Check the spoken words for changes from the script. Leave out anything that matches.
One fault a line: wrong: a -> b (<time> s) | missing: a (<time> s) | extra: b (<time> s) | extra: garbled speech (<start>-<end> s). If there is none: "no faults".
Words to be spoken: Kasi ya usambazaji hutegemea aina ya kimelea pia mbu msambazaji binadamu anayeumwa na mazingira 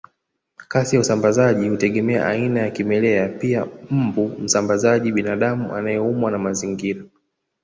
no faults